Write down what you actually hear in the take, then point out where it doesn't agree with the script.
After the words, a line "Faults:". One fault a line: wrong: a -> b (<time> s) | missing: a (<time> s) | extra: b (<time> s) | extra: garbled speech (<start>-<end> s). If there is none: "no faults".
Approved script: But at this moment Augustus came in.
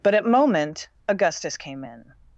But at moment Augustus came in.
Faults:
missing: this (0.2 s)